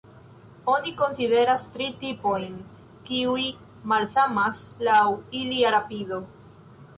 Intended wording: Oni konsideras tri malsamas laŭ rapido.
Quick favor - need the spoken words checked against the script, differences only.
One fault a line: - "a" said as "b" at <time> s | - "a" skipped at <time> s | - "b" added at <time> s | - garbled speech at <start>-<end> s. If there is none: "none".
- "tipojn kiuj" added at 2.0 s
- "ilia" added at 5.4 s